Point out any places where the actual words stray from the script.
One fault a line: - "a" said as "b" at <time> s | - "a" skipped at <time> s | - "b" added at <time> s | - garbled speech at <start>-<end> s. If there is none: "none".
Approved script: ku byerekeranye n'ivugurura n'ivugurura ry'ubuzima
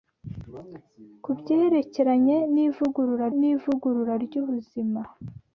none